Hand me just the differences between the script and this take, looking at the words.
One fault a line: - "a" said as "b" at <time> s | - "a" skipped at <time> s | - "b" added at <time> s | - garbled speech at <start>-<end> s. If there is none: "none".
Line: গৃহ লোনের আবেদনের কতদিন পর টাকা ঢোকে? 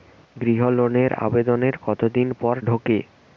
- "টাকা" skipped at 2.5 s